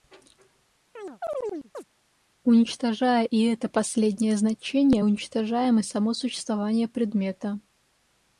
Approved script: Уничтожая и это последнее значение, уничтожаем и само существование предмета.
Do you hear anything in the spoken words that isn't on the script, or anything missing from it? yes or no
no